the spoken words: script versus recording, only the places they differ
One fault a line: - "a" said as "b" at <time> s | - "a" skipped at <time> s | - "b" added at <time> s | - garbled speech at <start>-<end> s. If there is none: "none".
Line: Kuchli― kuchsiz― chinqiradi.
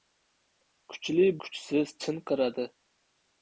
none